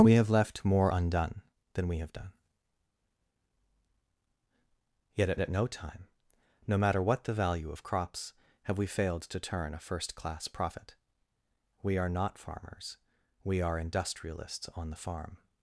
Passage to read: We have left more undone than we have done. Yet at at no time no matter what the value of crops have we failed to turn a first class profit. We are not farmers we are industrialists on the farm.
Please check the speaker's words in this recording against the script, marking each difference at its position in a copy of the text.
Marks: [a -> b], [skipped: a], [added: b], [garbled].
We have left more undone than we have done. Yet at at no time no matter what the value of crops have we failed to turn a first class profit. We are not farmers we are industrialists on the farm.